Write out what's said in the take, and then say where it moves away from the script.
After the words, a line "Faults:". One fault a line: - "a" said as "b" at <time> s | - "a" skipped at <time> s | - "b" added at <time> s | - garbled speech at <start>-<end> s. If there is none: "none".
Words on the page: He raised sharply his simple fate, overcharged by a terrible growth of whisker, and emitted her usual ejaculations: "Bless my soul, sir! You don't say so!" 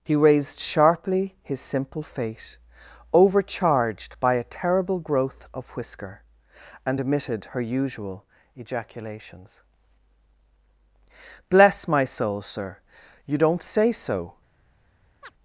He raised sharply his simple fate, overcharged by a terrible growth of whisker, and emitted her usual ejaculations: "Bless my soul, sir! You don't say so!"
Faults:
none